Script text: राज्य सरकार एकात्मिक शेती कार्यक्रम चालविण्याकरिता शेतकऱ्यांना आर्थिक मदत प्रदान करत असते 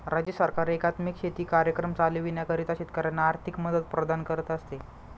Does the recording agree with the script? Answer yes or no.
yes